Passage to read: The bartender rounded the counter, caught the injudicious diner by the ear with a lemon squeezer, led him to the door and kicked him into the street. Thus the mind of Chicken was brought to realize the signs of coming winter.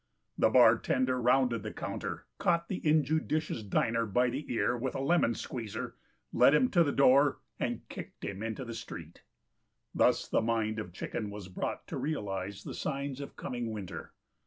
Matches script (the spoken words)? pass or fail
pass